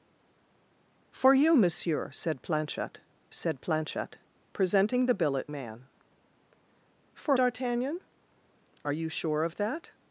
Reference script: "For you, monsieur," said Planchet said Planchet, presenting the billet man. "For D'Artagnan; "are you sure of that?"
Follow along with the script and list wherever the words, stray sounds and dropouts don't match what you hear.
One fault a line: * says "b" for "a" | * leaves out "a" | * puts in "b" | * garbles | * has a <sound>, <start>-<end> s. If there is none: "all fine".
all fine